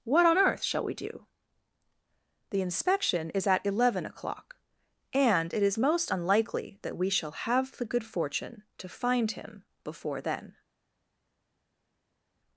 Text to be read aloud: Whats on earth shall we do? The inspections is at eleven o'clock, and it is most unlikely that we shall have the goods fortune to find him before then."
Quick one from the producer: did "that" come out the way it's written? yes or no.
yes